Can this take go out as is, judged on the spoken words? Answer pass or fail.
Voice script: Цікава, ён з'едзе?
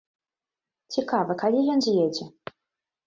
fail